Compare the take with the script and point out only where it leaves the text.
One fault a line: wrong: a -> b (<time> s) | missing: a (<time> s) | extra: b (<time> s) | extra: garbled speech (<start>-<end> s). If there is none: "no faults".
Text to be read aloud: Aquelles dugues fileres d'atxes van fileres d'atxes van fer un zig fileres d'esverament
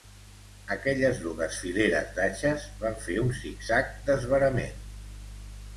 missing: fileres d'atxes van (3.0 s)
wrong: fileres -> zag (3.7 s)